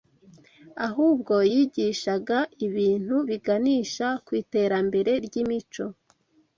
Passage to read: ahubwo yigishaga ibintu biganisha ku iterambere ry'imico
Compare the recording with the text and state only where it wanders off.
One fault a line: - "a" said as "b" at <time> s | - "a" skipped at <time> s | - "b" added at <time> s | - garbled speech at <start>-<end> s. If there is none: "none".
none